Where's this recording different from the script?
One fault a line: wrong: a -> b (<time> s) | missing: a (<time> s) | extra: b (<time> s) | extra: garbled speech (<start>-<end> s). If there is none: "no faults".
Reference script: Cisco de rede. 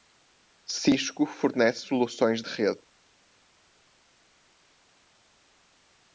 extra: fornece soluções (1.3 s)